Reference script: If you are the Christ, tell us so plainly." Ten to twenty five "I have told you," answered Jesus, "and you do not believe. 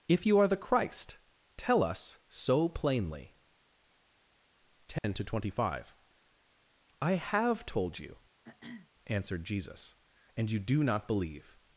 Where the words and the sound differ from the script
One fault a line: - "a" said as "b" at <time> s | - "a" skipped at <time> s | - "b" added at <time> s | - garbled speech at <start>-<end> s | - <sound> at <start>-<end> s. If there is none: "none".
- dropout at 5.0-5.0 s
- throat clearing at 8.4-8.9 s